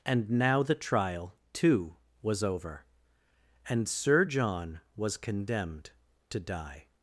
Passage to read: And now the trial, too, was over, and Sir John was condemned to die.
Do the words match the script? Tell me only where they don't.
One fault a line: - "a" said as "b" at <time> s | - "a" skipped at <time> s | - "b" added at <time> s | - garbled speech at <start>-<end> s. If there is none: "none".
none